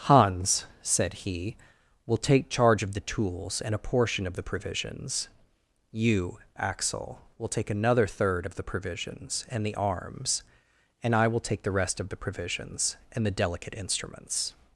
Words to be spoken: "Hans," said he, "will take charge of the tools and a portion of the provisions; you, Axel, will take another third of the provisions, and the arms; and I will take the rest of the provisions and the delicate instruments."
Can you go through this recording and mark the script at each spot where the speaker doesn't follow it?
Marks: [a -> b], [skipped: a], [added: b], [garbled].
"Hans," said he, "will take charge of the tools and a portion of the provisions; you, Axel, will take another third of the provisions, and the arms; and I will take the rest of the provisions and the delicate instruments."